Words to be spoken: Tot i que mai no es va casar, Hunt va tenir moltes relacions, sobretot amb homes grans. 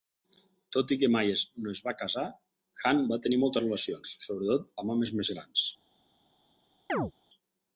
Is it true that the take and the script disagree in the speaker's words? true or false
true